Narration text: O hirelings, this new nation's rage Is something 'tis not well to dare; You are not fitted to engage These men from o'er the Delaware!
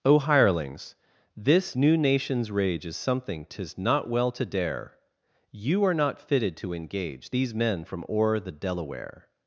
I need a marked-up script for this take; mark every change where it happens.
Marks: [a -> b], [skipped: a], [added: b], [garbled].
O hirelings, this new nation's rage Is something 'tis not well to dare; You are not fitted to engage These men from o'er the Delaware!